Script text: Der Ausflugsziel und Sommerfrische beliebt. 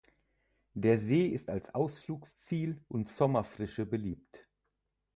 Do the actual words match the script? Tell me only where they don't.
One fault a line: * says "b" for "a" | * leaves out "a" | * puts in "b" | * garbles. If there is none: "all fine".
* puts in "See ist als"